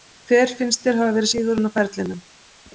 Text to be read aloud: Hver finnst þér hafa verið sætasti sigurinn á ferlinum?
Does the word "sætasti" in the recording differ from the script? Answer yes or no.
yes